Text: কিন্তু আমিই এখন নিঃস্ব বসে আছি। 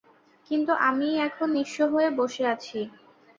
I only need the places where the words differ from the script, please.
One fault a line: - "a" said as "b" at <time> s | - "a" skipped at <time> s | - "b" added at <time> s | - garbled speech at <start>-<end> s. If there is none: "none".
- "হয়ে" added at 1.9 s